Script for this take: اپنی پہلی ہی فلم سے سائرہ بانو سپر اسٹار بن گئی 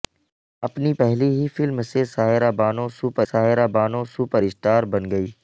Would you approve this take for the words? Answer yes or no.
no